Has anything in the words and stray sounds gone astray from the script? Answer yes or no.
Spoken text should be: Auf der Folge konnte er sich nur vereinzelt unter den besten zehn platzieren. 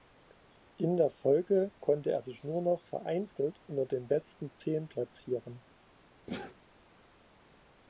yes